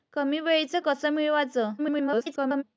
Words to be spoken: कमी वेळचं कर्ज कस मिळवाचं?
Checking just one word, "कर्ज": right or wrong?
wrong